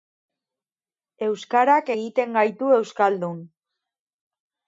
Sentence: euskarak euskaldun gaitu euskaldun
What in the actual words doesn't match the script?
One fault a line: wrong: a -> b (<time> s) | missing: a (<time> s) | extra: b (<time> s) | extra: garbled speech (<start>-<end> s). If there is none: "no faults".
wrong: euskaldun -> egiten (1.9 s)